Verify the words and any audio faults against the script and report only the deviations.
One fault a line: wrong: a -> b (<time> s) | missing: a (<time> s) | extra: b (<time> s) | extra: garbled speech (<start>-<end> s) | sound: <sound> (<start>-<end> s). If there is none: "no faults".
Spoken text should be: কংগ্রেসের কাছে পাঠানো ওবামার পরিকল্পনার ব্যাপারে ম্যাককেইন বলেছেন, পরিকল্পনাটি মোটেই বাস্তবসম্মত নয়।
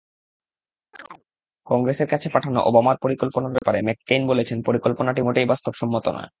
sound: chirp (0.9-1.2 s)
sound: dropout (3.6-3.6 s)